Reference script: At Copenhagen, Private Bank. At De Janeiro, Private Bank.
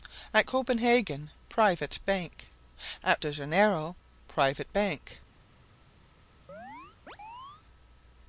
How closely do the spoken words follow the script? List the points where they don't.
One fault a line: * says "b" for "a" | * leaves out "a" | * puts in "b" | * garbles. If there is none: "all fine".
all fine